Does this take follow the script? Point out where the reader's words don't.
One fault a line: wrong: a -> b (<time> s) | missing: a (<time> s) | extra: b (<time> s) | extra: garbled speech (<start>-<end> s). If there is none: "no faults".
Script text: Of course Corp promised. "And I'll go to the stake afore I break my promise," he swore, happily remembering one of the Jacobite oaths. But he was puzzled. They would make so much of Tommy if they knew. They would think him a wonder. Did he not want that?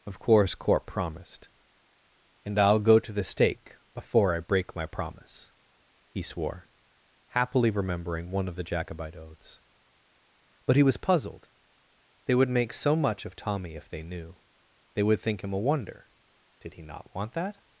wrong: afore -> before (3.9 s)